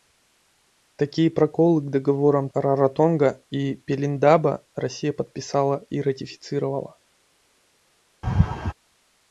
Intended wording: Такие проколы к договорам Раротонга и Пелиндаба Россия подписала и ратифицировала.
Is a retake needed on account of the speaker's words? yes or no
no